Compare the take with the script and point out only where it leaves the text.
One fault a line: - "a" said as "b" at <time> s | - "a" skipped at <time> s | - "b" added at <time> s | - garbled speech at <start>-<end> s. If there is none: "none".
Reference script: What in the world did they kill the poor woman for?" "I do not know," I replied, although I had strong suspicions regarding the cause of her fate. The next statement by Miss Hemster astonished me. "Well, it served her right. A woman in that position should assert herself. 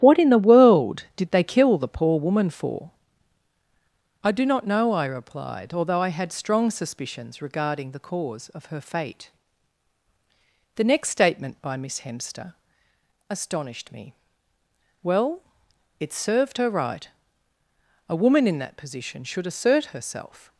none